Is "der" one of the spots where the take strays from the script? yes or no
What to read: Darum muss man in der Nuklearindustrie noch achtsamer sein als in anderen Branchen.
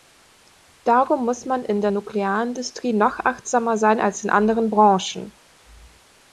no